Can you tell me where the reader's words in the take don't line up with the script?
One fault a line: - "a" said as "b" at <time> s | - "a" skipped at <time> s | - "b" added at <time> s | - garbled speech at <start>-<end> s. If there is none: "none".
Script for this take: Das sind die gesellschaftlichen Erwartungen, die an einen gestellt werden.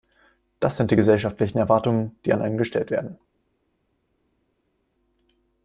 none